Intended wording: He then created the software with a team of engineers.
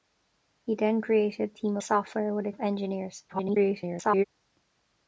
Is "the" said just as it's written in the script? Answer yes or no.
no